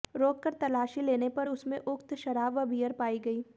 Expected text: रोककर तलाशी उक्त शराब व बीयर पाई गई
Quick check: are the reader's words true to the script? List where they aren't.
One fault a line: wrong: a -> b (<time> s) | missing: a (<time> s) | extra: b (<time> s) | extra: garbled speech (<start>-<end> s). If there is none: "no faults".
extra: लेने पर उसमें (1.0 s)